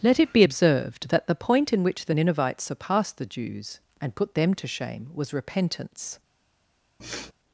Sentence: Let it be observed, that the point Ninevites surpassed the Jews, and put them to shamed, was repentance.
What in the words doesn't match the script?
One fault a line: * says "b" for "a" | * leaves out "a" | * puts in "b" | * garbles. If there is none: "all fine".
* puts in "in which the"
* says "shame" for "shamed"